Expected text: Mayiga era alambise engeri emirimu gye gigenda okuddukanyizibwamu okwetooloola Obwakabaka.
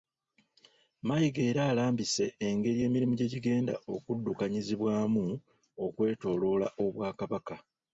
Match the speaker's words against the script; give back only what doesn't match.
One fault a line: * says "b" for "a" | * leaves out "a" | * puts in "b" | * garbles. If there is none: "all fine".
all fine